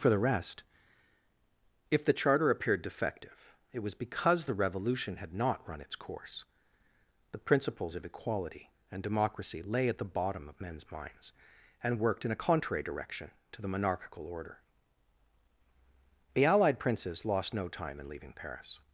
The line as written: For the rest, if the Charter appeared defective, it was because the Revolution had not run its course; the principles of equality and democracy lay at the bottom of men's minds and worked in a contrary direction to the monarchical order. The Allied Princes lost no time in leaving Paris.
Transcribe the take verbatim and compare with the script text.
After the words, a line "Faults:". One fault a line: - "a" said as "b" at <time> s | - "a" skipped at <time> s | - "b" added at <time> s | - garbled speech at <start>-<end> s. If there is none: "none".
For the rest, if the Charter appeared defective, it was because the Revolution had not run its course; the principles of equality and democracy lay at the bottom of men's minds and worked in a contrary direction to the monarchical order. The Allied Princes lost no time in leaving Paris.
Faults:
none